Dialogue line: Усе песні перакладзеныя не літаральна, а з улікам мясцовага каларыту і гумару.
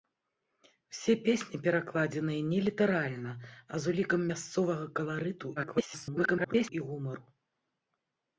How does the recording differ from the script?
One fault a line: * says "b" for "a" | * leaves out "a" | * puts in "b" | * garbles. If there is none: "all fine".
* garbles